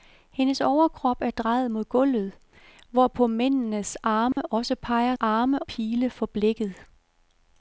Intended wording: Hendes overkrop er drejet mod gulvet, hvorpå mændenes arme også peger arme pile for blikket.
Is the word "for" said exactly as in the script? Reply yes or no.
yes